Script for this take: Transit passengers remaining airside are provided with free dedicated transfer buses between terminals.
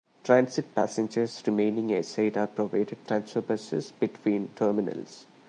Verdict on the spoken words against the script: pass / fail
fail